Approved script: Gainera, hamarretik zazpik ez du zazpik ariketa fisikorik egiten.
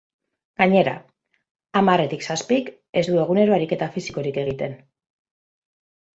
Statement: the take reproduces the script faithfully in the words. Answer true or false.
false